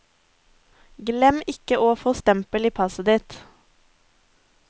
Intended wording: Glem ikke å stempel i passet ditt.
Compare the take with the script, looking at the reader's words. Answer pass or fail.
fail